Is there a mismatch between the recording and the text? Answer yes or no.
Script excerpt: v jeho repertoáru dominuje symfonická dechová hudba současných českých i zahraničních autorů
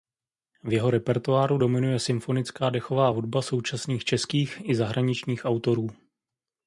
no